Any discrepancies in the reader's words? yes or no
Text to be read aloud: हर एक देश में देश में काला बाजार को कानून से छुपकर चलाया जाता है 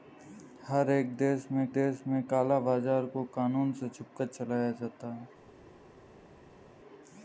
no